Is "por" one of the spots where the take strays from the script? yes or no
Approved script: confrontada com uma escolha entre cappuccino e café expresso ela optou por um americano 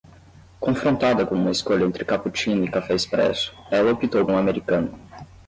yes